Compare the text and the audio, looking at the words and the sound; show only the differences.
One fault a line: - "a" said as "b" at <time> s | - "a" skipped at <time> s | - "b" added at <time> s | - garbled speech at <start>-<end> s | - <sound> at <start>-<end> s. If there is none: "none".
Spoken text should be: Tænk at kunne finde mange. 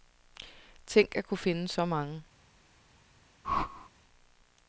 - "så" added at 1.7 s
- whoosh at 3.4-3.9 s